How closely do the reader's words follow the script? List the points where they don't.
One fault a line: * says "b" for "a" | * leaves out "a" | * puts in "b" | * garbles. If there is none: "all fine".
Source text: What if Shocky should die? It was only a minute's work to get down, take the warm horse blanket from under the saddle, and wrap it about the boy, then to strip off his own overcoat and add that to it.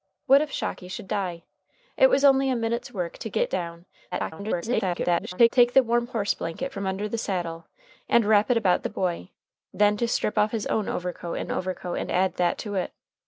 * garbles
* puts in "overcoat and"